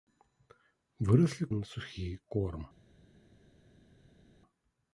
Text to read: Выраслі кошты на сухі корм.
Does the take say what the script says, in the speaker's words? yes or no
no